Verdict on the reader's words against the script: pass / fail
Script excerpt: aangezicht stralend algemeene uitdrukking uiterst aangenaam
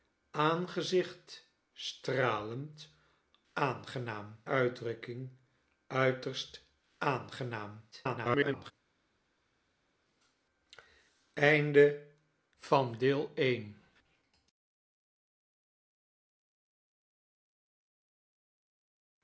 fail